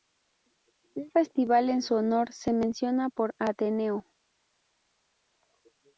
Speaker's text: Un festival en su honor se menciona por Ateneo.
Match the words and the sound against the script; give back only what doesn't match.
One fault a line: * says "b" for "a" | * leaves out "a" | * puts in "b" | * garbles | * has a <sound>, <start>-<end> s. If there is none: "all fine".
all fine